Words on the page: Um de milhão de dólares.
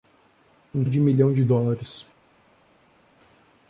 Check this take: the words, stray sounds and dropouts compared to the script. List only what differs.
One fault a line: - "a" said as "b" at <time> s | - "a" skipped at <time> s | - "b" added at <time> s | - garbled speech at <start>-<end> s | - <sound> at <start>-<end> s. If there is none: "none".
none